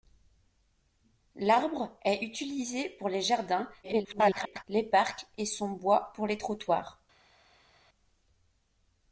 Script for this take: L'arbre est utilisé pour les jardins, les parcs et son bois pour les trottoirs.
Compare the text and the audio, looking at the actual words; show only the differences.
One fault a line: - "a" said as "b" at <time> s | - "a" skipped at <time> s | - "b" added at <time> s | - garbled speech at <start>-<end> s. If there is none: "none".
- garbled speech at 3.8-4.6 s